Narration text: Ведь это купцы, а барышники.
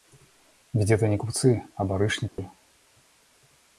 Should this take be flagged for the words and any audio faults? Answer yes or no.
yes